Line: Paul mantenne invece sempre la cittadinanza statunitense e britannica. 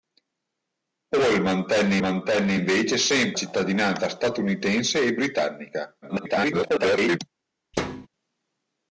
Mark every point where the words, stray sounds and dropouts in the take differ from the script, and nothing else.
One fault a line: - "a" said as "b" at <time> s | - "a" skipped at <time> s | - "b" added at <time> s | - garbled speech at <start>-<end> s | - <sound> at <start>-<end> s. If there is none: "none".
- "mantenne" added at 2.0 s
- "la" skipped at 3.4 s
- garbled speech at 6.0-7.2 s
- thud at 7.7-8.1 s